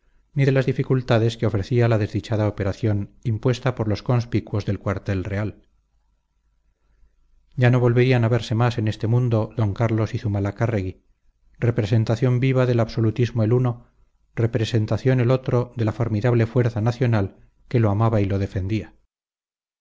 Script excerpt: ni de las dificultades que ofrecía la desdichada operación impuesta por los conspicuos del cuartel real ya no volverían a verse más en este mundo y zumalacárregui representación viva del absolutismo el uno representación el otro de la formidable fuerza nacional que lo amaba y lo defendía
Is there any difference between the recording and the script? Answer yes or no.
yes